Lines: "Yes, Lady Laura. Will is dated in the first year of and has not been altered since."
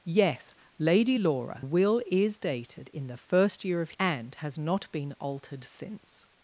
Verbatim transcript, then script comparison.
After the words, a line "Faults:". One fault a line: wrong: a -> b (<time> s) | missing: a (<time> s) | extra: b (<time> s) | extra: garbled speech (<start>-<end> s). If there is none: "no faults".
"Yes, Lady Laura. Will is dated in the first year of and has not been altered since."
Faults:
no faults